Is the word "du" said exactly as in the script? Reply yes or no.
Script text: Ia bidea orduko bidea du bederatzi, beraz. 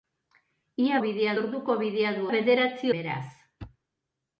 yes